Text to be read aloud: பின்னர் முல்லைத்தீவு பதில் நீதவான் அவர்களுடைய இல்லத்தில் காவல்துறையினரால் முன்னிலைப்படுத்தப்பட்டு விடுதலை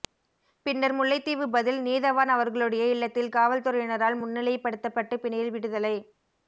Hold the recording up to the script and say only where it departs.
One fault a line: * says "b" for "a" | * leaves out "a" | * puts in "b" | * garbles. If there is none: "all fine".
* puts in "பிணையில்"